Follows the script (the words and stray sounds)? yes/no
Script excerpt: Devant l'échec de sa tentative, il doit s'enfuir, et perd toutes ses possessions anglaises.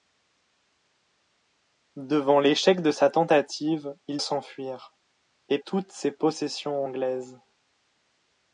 no